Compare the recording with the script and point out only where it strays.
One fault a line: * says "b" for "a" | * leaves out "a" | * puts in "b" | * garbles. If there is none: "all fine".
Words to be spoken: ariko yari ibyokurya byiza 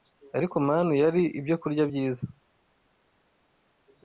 * puts in "manu"